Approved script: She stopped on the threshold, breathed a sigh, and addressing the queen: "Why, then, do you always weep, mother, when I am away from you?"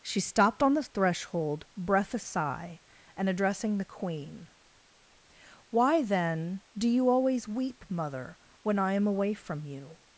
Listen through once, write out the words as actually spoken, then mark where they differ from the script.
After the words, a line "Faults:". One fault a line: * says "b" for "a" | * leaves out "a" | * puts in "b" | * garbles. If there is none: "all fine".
She stopped on the threshold, breath a sigh, and addressing the queen: "Why, then, do you always weep, mother, when I am away from you?"
Faults:
* says "breath" for "breathed"